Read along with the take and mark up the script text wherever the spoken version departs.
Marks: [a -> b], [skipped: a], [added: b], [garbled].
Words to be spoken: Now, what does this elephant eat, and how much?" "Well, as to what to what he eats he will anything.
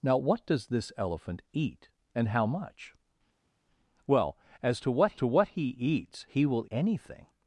Now, what does this elephant eat, and how much?" "Well, as to what to what he eats he will anything.